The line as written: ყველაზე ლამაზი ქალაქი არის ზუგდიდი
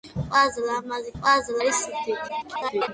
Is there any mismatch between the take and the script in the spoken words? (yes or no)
yes